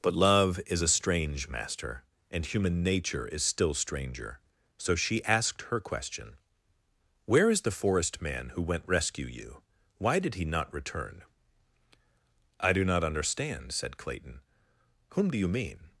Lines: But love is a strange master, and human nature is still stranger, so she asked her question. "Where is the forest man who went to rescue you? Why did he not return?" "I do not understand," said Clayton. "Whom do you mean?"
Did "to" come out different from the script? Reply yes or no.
yes